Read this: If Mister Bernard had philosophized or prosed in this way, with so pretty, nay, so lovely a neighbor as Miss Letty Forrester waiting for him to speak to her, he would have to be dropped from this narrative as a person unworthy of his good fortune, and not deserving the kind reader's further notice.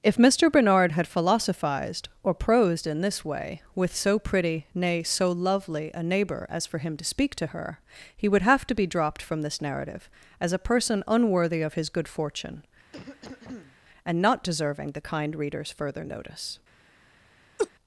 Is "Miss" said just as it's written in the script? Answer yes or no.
no